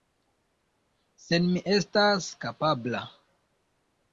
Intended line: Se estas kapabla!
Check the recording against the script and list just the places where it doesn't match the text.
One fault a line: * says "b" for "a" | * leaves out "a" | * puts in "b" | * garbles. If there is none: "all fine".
* puts in "mi"